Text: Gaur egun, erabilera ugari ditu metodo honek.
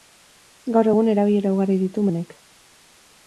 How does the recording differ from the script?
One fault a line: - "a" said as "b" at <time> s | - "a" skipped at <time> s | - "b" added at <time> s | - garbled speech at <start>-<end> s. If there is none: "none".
- "metodo" skipped at 2.1 s